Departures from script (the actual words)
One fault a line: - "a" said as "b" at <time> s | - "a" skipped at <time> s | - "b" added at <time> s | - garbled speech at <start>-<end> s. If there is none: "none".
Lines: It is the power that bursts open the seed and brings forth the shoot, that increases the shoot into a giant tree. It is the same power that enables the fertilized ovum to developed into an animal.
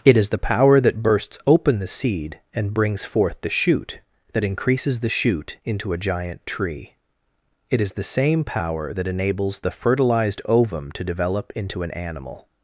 - "developed" said as "develop" at 11.0 s